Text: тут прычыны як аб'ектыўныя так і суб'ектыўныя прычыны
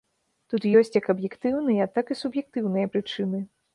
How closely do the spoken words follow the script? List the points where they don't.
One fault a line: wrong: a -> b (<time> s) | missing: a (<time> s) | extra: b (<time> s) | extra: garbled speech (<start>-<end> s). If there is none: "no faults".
wrong: прычыны -> ёсць (0.8 s)